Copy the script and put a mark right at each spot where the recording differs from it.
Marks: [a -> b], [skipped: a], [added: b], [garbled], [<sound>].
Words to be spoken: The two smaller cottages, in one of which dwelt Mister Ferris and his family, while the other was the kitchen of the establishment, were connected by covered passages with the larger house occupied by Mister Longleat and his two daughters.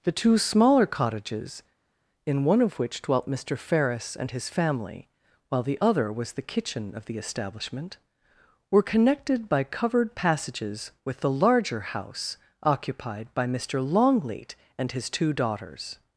The two smaller cottages, in one of which dwelt Mister Ferris and his family, while the other was the kitchen of the establishment, were connected by covered passages with the larger house occupied by Mister Longleat and his two daughters.